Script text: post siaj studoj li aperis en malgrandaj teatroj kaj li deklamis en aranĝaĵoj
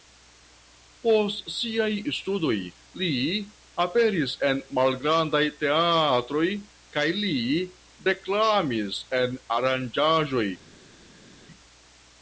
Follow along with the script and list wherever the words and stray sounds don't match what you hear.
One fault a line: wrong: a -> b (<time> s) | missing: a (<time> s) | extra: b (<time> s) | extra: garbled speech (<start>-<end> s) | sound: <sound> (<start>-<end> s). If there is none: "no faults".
no faults